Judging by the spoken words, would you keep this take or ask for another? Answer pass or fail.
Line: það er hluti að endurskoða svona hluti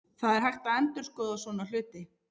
fail